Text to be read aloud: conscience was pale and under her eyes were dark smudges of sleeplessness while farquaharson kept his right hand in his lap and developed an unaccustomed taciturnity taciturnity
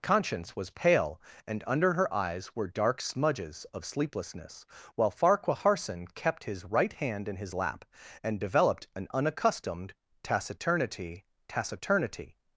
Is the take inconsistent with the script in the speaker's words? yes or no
no